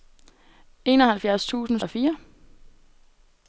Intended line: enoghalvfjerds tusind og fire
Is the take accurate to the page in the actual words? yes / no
yes